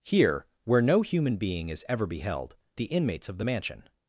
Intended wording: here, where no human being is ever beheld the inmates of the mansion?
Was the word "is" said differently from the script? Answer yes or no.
no